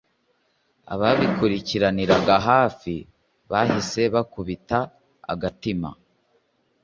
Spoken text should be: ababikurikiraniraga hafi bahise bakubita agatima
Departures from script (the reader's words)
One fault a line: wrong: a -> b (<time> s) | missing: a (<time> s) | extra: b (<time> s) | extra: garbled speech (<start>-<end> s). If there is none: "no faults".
no faults